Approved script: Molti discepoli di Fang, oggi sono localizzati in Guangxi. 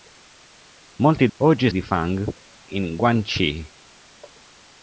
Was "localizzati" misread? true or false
true